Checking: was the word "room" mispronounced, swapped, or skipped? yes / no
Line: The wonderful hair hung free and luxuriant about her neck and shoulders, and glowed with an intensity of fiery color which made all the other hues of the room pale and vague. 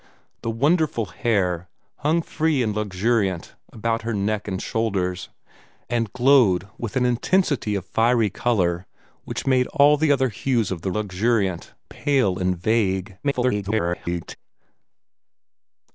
yes